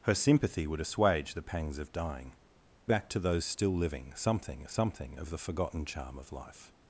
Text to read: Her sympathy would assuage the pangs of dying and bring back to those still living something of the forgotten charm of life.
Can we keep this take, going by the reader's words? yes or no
no